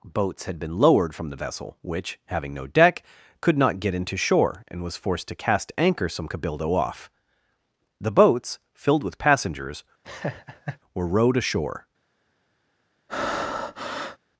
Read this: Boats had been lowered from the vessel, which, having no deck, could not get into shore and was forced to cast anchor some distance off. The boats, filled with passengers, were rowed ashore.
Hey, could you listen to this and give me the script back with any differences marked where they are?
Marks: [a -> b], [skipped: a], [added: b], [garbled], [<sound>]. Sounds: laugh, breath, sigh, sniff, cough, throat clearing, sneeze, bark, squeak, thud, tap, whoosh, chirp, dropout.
Boats had been lowered from the vessel, which, having no deck, could not get into shore and was forced to cast anchor some [distance -> cabildo] off. The boats, filled with passengers, [laugh] were rowed ashore. [breath]